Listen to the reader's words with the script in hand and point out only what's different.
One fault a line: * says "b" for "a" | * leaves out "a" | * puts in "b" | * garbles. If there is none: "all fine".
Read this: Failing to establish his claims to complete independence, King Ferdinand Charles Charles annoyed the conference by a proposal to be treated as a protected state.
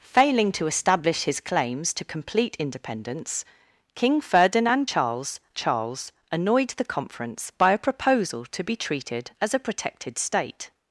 all fine